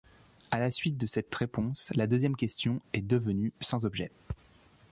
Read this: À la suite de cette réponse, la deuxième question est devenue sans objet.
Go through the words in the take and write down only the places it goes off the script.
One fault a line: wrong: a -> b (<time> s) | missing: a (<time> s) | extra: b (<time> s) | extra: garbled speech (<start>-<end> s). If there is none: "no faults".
no faults